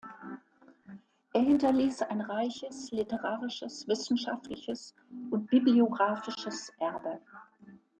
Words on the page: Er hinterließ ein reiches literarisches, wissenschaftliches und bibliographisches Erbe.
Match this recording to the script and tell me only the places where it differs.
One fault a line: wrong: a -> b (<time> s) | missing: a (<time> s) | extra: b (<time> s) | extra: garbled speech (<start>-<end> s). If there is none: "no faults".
no faults